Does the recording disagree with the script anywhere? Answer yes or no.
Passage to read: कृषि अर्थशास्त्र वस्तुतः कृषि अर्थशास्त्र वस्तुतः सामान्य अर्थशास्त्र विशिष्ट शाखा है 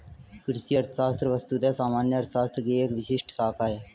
yes